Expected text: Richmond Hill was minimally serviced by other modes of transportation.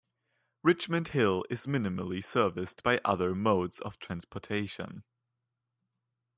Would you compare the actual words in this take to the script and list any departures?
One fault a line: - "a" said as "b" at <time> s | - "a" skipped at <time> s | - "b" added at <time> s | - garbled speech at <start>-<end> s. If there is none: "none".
- "was" said as "is" at 1.5 s